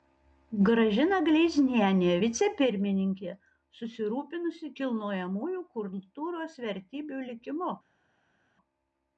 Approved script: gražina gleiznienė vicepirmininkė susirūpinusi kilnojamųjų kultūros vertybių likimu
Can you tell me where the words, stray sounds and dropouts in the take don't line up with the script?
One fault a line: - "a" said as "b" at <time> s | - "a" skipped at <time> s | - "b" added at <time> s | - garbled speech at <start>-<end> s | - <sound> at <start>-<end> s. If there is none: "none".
none